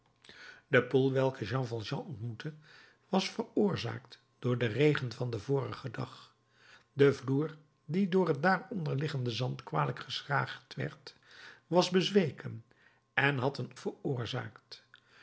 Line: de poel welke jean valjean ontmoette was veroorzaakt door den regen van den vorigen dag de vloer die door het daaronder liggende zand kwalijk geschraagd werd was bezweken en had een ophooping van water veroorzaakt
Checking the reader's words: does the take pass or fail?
fail